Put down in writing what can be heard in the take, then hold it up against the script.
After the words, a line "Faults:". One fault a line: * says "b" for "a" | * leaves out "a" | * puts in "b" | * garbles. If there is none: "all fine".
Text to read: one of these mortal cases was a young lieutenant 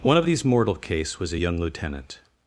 one of these mortal case was a young lieutenant
Faults:
* says "case" for "cases"